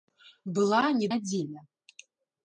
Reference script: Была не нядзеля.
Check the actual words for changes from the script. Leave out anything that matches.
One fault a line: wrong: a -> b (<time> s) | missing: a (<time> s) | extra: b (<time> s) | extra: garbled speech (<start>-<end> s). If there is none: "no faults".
no faults